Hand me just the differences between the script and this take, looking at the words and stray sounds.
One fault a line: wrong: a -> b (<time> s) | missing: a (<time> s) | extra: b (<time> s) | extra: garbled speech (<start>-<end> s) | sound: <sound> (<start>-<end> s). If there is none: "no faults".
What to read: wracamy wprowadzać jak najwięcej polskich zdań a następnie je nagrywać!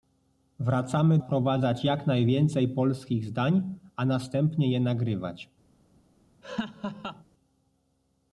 sound: laugh (6.4-7.2 s)